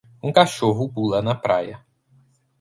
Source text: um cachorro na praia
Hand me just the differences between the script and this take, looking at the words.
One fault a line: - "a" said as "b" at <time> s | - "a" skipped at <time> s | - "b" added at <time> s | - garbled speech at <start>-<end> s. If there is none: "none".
- "pula" added at 0.8 s